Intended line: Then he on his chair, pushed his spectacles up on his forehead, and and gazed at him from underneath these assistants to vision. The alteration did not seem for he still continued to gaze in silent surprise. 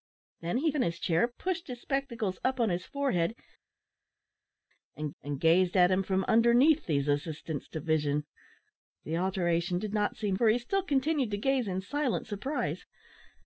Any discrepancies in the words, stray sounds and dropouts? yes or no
no